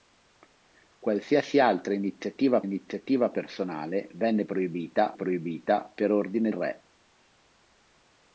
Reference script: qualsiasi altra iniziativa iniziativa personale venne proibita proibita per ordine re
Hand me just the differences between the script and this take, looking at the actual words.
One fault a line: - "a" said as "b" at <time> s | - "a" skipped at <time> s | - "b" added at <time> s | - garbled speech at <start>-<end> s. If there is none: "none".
none